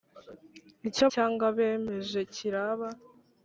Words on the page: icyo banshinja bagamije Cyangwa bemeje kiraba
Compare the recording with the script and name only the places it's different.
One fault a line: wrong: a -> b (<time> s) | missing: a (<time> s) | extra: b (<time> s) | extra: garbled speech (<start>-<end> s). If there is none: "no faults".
missing: banshinja bagamije (1.1 s)